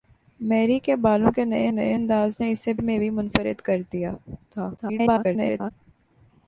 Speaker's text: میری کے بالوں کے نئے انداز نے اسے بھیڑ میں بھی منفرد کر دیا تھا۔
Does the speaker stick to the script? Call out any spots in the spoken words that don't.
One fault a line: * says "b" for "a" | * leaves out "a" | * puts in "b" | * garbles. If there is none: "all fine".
* puts in "نئے"
* leaves out "بھیڑ"
* garbles